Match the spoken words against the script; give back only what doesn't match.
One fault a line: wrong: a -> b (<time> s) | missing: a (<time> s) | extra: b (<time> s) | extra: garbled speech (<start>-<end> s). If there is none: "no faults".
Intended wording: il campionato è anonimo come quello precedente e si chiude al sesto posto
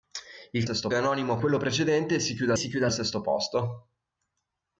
wrong: campionato -> sesto (0.6 s)
missing: come (1.4 s)
extra: si chiude (2.6 s)